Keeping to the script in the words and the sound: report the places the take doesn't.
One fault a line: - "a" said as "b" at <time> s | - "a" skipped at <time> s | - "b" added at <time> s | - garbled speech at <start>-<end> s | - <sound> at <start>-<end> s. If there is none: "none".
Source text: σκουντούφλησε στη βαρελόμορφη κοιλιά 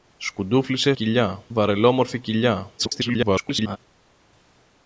- "στη" said as "κοιλιά" at 0.9 s
- garbled speech at 2.8-3.8 s